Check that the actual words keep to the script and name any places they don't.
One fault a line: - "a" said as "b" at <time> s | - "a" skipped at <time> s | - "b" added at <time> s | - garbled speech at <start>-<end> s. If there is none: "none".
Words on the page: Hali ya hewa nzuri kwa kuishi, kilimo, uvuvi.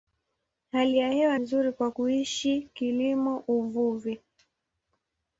none